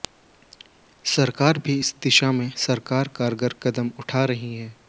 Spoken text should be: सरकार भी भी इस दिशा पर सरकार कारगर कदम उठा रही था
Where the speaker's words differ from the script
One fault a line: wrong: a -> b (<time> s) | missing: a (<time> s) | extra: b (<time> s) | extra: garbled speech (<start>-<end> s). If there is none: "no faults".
missing: भी (1.8 s)
wrong: पर -> में (2.3 s)
wrong: था -> है (4.6 s)